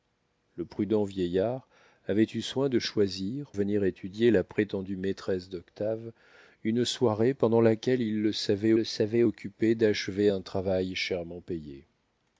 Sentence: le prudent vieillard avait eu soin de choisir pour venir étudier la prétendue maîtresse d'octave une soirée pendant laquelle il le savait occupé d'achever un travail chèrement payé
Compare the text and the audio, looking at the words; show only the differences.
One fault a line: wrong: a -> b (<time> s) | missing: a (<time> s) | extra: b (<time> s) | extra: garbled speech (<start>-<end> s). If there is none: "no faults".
missing: pour (3.5 s)
extra: le savait (8.7 s)